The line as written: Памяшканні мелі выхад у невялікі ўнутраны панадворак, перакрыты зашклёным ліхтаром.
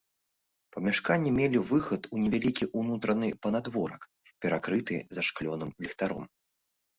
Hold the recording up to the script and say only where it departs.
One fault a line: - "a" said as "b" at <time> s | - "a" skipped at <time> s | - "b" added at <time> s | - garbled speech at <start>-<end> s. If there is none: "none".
none